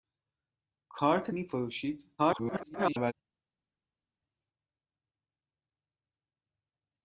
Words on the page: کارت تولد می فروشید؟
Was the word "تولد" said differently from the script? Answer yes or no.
yes